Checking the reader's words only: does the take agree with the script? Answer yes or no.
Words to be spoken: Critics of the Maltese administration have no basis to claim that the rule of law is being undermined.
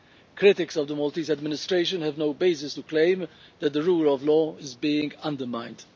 yes